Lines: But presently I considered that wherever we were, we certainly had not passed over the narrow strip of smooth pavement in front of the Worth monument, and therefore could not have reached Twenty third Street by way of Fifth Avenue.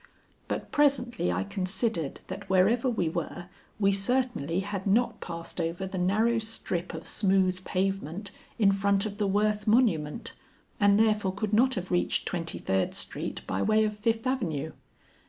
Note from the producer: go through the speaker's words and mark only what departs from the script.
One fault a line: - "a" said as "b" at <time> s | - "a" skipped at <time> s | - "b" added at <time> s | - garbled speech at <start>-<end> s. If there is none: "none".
none